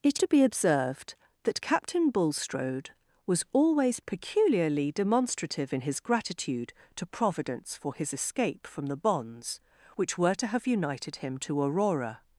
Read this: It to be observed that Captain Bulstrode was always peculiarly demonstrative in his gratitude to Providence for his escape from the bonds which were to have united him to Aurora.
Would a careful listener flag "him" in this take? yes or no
no